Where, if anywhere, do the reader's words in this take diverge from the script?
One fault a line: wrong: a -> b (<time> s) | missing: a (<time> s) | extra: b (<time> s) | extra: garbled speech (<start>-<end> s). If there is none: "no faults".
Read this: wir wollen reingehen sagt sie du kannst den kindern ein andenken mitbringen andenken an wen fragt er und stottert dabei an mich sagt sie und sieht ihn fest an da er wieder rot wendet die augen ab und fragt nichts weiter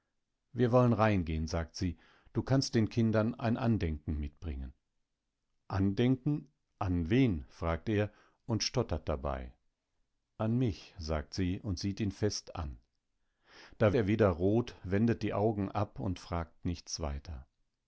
no faults